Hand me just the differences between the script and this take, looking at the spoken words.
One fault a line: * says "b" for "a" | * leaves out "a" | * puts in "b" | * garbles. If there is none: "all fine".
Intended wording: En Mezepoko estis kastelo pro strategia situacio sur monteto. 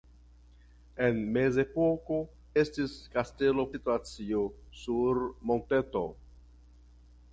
* leaves out "pro strategia"